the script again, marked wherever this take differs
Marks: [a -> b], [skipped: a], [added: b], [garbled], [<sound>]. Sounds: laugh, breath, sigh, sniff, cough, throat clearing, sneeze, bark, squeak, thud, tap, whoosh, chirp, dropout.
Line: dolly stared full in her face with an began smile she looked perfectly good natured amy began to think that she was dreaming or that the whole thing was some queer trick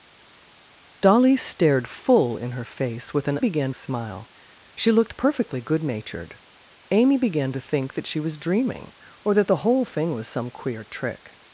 dolly stared full in her face with an began smile she looked perfectly good natured amy began to think that she was dreaming or that the whole thing was some queer trick